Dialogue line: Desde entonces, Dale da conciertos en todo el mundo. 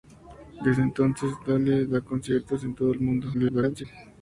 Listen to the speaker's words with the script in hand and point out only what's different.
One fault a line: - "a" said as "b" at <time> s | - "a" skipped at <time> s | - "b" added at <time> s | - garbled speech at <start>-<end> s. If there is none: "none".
- garbled speech at 3.3-3.8 s